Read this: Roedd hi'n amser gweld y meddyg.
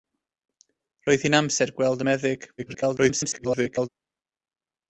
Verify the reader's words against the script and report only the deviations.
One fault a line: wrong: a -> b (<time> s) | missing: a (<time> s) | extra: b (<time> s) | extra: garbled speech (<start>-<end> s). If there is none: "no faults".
extra: garbled speech (2.6-3.9 s)